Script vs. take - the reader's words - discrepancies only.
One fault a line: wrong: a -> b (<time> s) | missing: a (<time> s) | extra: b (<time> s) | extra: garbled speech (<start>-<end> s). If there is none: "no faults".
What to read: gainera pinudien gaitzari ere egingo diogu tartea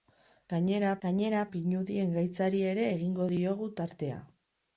extra: gainera (1.0 s)